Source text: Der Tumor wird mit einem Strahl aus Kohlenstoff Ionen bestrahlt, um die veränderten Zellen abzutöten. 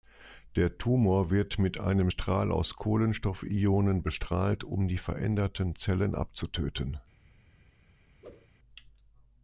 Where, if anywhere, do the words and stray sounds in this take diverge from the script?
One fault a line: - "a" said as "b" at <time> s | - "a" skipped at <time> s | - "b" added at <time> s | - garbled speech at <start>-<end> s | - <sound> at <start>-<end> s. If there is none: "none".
- whoosh at 8.2-8.5 s